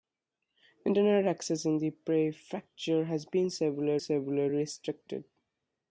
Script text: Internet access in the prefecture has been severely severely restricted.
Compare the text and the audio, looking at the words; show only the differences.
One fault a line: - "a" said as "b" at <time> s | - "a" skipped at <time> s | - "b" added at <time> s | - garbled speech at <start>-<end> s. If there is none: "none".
none